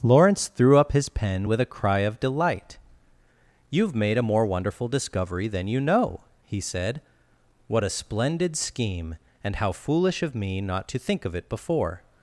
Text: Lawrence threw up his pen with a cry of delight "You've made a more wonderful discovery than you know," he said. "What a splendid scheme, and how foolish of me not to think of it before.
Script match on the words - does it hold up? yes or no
yes